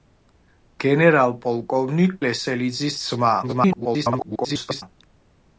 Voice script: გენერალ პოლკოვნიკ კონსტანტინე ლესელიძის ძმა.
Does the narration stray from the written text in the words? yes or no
yes